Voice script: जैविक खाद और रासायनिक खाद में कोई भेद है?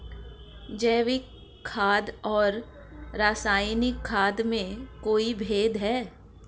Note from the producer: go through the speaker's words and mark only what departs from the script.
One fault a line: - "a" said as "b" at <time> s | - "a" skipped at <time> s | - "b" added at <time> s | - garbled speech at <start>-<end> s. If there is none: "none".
none